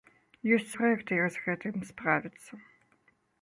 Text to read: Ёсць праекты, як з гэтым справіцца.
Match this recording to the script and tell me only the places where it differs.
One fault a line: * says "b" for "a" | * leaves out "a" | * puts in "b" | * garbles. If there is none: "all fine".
all fine